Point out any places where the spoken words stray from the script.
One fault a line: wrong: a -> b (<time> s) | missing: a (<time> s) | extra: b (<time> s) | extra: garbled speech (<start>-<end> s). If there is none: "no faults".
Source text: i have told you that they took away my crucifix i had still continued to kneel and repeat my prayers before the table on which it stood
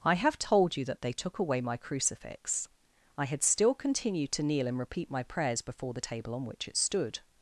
no faults